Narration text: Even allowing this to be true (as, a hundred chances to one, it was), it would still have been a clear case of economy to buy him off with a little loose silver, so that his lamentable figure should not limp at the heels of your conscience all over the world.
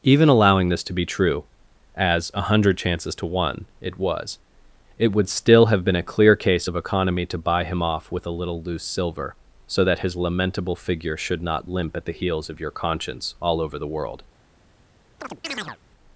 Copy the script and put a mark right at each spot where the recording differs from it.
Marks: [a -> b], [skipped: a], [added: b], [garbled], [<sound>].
Even allowing this to be true (as, a hundred chances to one, it was), it would still have been a clear case of economy to buy him off with a little loose silver, so that his lamentable figure should not limp at the heels of your conscience all over the world. [chirp]